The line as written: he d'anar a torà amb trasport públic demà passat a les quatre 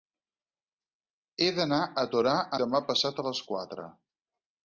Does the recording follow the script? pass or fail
fail